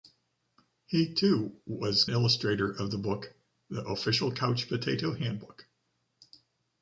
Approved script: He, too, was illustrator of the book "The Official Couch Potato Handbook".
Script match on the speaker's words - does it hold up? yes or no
yes